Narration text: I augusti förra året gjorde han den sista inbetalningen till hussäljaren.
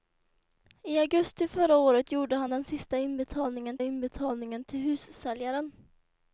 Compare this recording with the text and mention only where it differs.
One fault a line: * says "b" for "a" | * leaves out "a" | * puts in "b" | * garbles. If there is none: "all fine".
* puts in "inbetalningen"